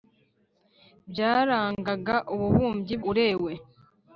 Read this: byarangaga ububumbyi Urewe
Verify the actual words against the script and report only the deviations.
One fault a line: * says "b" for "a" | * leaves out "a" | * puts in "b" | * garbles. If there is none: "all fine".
all fine